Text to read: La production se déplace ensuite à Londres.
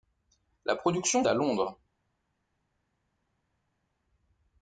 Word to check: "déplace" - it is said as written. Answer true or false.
false